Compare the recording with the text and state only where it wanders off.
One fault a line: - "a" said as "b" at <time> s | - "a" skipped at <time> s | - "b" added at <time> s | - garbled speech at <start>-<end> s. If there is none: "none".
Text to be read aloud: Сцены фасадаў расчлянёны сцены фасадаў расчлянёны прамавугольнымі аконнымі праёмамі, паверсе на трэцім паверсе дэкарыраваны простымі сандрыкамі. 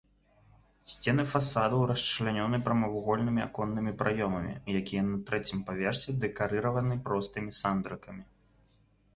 - "сцены фасадаў расчлянёны" skipped at 2.6 s
- "паверсе" said as "якія" at 4.8 s